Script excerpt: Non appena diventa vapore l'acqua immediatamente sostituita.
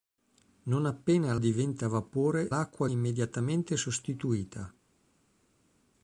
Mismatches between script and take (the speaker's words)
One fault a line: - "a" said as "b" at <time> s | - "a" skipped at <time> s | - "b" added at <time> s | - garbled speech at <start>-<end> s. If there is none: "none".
none